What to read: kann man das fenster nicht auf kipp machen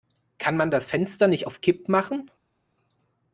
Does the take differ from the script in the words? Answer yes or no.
no